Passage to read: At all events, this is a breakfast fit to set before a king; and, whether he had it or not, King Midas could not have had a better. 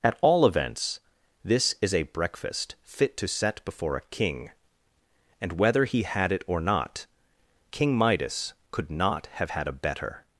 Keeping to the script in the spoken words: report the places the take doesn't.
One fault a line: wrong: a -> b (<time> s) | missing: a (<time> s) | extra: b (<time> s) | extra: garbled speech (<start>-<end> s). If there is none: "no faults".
no faults